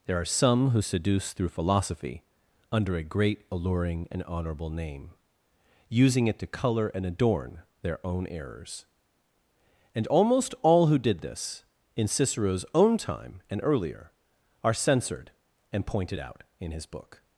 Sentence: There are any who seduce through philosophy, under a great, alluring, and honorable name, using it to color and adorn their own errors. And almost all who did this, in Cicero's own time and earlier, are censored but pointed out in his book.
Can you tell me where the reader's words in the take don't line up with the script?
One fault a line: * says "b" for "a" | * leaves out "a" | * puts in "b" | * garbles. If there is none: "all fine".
* says "some" for "any"
* says "and" for "but"